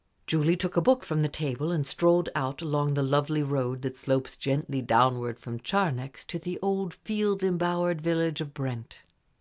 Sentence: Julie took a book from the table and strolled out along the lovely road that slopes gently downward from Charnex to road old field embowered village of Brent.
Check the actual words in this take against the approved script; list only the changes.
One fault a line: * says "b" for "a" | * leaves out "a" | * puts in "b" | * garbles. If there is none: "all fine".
* says "the" for "road"